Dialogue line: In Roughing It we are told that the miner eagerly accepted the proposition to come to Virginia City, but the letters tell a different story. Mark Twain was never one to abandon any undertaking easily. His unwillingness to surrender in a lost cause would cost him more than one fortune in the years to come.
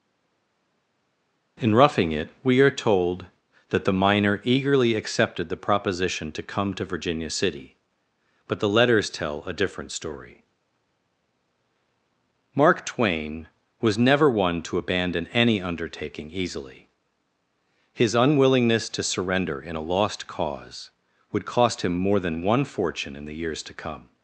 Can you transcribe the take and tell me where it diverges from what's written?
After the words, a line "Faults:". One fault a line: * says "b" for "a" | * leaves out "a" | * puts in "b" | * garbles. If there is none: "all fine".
In Roughing It we are told that the miner eagerly accepted the proposition to come to Virginia City, but the letters tell a different story. Mark Twain was never one to abandon any undertaking easily. His unwillingness to surrender in a lost cause would cost him more than one fortune in the years to come.
Faults:
all fine